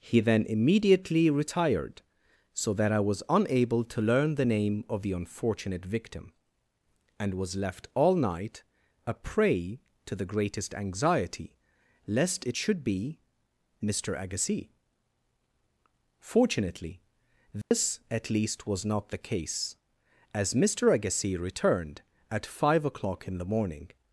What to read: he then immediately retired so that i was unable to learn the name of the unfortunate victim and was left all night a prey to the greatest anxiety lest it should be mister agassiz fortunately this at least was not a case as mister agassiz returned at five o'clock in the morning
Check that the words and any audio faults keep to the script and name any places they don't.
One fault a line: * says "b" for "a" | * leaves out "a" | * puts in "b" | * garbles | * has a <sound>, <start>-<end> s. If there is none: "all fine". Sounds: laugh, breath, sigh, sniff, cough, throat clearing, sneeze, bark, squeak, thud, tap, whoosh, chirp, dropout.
* has a dropout, 17.6-17.7 s
* says "the" for "a"